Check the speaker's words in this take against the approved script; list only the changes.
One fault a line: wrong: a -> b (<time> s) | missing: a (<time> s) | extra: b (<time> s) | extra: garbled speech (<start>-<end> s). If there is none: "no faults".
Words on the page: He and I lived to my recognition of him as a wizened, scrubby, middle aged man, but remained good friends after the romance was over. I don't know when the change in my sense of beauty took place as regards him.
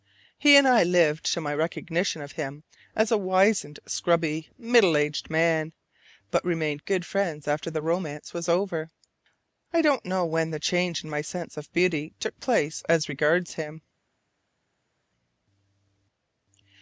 no faults